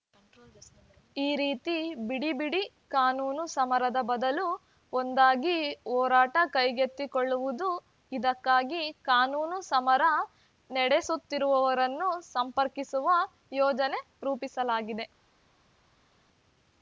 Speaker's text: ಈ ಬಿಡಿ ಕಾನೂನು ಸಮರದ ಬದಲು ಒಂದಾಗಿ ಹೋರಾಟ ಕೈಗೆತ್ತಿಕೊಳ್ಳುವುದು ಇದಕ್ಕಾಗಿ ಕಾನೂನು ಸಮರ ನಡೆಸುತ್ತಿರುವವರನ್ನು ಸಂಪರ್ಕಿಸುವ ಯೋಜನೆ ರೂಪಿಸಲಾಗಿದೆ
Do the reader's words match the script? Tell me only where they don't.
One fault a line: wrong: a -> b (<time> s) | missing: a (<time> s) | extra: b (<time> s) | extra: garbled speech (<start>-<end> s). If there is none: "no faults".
extra: ರೀತಿ ಬಿಡಿ (1.4 s)